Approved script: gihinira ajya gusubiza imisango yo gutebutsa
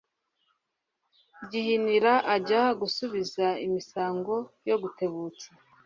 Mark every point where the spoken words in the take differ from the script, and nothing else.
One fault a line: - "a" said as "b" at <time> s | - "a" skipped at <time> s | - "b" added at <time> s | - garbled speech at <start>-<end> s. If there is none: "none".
none